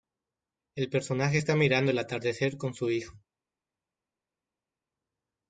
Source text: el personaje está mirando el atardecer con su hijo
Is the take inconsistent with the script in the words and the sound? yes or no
no